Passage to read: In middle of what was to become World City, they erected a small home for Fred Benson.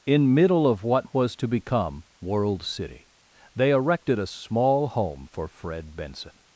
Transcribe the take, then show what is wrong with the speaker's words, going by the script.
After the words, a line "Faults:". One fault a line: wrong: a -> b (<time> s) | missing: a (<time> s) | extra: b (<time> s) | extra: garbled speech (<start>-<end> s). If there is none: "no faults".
In middle of what was to become World City, they erected a small home for Fred Benson.
Faults:
no faults